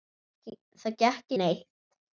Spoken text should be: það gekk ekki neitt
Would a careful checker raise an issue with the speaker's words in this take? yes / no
yes